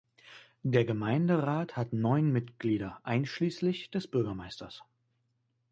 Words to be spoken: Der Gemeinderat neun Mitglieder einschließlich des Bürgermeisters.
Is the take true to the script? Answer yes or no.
no